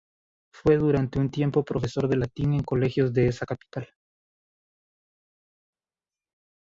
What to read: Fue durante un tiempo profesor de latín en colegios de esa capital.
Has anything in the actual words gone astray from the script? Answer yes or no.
no